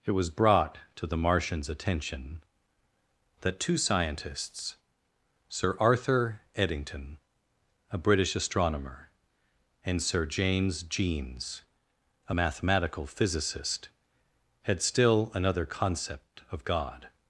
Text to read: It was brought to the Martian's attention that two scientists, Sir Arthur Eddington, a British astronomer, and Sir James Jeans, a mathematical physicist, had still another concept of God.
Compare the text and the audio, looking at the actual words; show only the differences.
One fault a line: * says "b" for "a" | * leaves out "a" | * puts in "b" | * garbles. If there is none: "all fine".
all fine